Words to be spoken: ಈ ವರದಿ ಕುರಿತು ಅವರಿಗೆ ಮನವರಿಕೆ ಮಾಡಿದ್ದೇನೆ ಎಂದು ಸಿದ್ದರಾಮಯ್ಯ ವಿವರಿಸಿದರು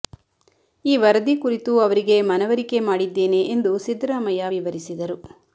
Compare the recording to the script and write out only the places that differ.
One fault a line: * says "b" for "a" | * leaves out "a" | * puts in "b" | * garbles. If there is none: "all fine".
all fine